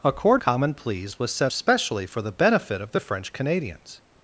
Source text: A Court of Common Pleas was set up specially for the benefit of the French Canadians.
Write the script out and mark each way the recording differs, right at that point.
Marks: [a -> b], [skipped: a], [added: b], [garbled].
A Court [skipped: of] Common Pleas was set [skipped: up] specially for the benefit of the French Canadians.